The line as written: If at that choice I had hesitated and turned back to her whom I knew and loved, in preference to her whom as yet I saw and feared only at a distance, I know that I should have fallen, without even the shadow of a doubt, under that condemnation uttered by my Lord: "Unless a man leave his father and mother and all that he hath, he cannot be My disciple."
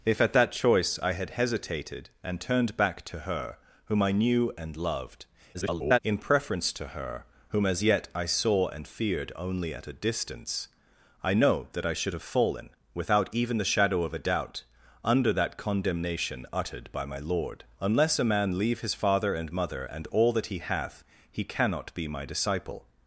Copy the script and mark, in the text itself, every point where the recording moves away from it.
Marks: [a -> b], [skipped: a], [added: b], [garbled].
If at that choice I had hesitated and turned back to her whom I knew and loved, [garbled] in preference to her whom as yet I saw and feared only at a distance, I know that I should have fallen, without even the shadow of a doubt, under that condemnation uttered by my Lord: "Unless a man leave his father and mother and all that he hath, he cannot be My disciple."